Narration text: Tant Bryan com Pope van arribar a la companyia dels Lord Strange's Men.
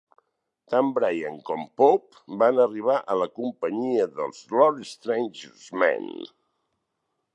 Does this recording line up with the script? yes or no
yes